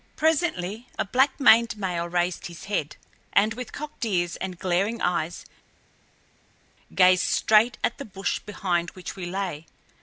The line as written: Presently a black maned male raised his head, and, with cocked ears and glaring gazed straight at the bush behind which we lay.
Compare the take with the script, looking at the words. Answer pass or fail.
fail